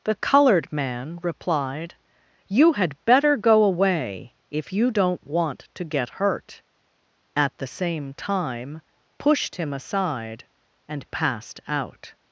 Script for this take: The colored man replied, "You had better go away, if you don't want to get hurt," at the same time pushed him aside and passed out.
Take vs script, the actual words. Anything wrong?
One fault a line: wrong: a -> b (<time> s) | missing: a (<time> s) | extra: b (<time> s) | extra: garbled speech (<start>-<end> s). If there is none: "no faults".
no faults